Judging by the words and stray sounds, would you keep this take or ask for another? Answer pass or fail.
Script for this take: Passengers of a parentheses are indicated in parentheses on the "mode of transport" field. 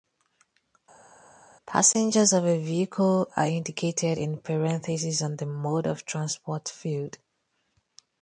fail